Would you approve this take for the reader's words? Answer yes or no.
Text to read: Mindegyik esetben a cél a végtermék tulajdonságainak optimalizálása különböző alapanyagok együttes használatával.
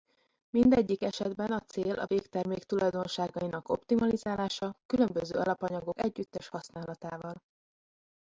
yes